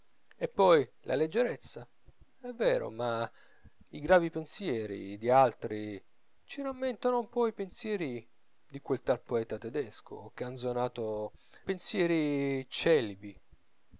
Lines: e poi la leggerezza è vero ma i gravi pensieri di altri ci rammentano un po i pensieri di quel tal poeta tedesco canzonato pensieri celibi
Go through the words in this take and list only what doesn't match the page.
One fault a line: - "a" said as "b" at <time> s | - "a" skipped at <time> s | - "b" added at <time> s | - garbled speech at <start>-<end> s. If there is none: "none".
none